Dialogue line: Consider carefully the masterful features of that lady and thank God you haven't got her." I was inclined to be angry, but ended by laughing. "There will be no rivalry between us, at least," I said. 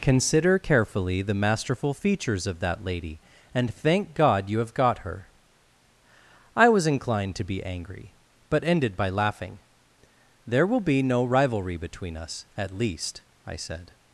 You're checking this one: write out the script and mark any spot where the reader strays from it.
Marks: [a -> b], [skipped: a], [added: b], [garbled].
Consider carefully the masterful features of that lady and thank God you [haven't -> have] got her." I was inclined to be angry, but ended by laughing. "There will be no rivalry between us, at least," I said.